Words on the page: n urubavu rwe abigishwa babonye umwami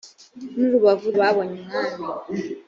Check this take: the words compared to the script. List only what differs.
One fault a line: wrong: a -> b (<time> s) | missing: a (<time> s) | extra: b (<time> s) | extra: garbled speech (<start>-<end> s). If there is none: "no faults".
missing: rwe abigishwa (1.1 s)